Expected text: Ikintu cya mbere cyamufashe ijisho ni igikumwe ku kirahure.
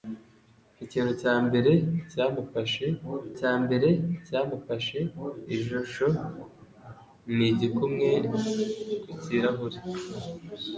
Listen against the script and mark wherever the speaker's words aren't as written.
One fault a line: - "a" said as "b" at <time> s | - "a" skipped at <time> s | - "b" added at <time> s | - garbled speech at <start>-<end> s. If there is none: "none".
- "cya mbere cyamufashe" added at 3.4 s